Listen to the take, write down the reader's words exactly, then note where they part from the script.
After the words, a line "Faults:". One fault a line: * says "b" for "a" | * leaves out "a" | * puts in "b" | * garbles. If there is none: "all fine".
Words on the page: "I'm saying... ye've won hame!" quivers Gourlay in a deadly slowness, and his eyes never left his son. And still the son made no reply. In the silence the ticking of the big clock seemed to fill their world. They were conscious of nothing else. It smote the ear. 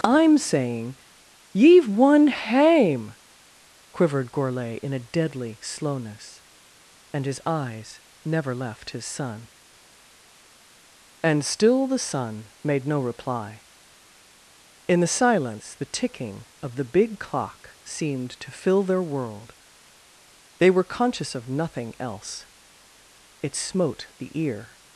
"I'm saying... ye've won hame!" quivered Gourlay in a deadly slowness, and his eyes never left his son. And still the son made no reply. In the silence the ticking of the big clock seemed to fill their world. They were conscious of nothing else. It smote the ear.
Faults:
* says "quivered" for "quivers"